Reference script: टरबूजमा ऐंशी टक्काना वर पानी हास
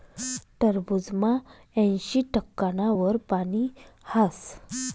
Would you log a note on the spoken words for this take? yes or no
no